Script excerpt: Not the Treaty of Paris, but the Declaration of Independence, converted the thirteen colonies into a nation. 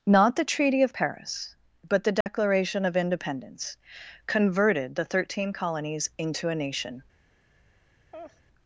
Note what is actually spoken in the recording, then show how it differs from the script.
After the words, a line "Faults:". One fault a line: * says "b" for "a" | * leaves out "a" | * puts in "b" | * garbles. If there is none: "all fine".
Not the Treaty of Paris, but the Declaration of Independence, converted the thirteen colonies into a nation.
Faults:
all fine